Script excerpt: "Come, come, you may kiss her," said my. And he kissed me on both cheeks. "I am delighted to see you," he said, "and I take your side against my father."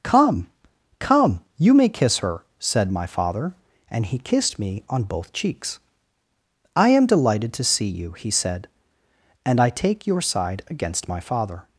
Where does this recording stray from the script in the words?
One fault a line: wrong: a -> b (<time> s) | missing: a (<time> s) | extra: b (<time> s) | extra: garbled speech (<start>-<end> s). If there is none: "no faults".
extra: father (3.1 s)